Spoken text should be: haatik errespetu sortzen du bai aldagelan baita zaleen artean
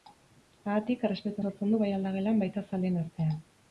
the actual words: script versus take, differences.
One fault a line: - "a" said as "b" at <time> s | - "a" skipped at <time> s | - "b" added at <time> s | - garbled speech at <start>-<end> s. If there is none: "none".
none